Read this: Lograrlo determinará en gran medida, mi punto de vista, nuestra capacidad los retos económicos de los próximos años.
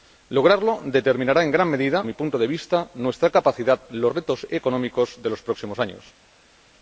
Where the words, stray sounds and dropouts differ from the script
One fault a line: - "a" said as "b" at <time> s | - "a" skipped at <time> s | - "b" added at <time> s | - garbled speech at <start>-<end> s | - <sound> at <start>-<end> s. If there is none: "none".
none